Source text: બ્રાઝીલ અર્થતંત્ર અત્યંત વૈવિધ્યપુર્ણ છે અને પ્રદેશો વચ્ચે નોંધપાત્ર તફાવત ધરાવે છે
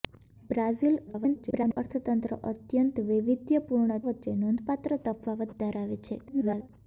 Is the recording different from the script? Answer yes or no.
yes